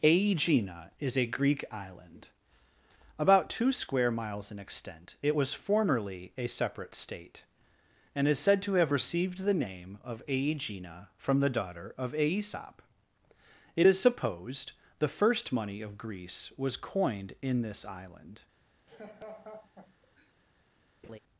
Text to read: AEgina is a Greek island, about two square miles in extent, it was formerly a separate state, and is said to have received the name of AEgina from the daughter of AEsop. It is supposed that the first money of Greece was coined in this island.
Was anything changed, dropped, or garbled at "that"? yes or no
yes